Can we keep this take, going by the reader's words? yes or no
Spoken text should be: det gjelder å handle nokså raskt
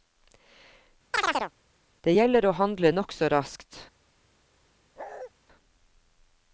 yes